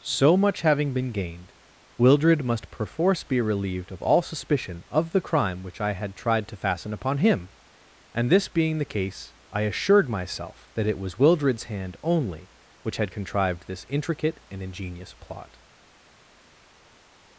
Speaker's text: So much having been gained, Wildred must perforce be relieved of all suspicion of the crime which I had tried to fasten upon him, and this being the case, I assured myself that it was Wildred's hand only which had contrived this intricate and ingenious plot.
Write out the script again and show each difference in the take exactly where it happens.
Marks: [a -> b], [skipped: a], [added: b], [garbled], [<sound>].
So much having been gained, Wildred must perforce be relieved of all suspicion of the crime which I had tried to fasten upon him, and this being the case, I assured myself that it was Wildred's hand only which had contrived this intricate and ingenious plot.